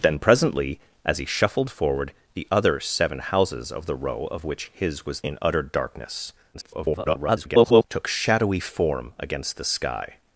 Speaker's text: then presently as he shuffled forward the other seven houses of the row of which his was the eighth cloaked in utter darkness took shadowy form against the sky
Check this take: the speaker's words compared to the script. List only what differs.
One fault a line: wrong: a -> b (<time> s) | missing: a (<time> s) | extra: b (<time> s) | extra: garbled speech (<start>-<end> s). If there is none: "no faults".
missing: the eighth cloaked (5.2 s)
extra: garbled speech (6.5-7.8 s)